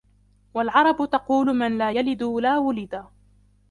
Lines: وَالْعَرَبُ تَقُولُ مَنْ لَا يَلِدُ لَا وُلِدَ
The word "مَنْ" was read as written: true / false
true